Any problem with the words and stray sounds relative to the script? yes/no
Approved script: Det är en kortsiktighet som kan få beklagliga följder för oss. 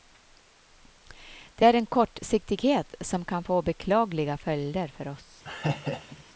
yes